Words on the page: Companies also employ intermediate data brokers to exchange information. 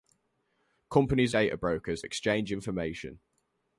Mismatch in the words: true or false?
true